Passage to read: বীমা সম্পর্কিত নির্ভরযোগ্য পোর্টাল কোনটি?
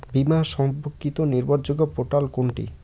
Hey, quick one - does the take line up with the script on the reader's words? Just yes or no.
yes